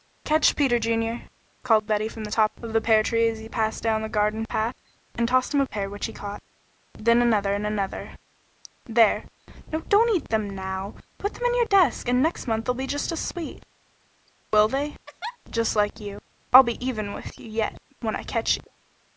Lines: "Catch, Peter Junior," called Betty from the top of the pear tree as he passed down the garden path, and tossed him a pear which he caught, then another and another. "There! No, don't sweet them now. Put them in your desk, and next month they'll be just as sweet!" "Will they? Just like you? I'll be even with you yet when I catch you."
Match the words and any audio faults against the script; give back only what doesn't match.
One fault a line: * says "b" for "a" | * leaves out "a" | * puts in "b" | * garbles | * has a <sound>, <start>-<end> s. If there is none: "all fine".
* says "eat" for "sweet"
* has a laugh, 15.1-15.4 s